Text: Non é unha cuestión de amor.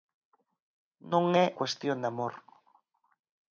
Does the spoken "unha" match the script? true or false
false